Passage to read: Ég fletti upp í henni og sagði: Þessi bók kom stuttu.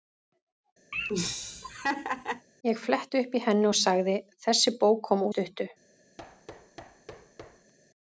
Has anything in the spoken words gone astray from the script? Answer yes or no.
no